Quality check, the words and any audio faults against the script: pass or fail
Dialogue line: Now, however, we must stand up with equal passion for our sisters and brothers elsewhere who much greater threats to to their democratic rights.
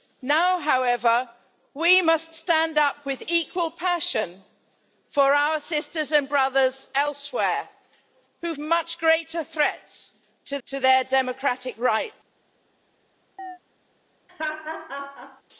fail